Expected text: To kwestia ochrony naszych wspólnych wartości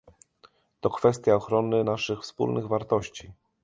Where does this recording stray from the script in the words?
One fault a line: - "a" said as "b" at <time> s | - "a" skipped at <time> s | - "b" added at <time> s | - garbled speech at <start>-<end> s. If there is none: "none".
none